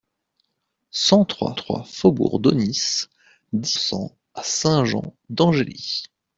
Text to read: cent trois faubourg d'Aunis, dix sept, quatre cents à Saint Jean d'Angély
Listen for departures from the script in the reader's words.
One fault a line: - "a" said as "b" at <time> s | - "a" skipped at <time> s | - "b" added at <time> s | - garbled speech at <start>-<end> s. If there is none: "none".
- "trois" added at 1.5 s
- "sept quatre" skipped at 3.7 s